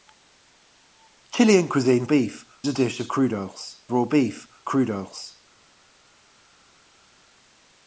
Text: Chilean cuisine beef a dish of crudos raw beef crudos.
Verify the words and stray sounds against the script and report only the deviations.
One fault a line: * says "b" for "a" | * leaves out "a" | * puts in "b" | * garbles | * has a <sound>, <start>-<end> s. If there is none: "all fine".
all fine